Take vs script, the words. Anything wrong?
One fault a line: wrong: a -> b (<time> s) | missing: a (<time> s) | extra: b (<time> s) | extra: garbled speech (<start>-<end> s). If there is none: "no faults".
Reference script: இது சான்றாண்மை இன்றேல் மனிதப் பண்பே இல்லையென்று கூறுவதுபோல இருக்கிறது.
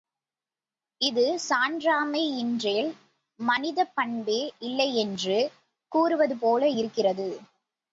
no faults